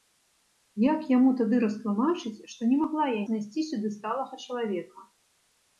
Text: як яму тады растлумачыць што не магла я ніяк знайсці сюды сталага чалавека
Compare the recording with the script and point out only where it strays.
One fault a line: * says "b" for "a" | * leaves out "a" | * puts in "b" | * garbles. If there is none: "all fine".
* leaves out "ніяк"